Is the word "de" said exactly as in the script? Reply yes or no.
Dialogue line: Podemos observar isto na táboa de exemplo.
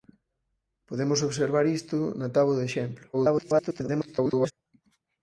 yes